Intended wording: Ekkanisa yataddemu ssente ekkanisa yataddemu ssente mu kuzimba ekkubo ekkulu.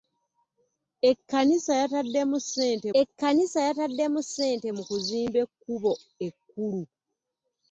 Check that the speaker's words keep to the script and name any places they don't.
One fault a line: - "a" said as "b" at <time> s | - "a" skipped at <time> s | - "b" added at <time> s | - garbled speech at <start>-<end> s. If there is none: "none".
none